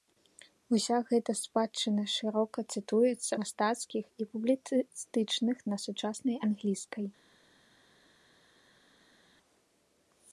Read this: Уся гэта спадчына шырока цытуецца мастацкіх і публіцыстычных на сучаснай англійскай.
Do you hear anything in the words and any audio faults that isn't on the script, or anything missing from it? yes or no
no